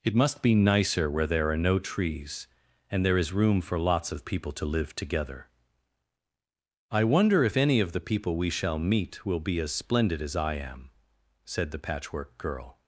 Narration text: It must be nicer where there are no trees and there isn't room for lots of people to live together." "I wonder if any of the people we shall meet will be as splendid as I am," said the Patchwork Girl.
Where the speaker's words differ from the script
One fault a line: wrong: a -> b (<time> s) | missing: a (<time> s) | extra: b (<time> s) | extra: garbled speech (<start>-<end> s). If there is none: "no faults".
wrong: isn't -> is (3.2 s)